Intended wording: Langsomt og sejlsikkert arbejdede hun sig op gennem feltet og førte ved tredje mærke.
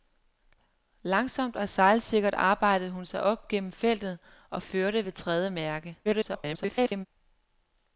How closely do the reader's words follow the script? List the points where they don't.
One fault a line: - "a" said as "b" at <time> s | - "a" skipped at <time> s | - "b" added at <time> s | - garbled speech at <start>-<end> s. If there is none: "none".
- garbled speech at 6.0-7.1 s